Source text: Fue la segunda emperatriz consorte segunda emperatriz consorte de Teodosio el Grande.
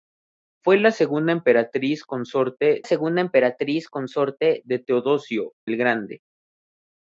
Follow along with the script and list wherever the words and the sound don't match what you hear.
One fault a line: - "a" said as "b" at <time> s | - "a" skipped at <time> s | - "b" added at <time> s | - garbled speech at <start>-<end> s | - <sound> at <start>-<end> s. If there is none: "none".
none